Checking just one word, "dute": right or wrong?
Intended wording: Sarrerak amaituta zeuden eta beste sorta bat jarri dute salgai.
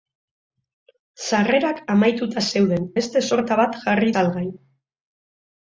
wrong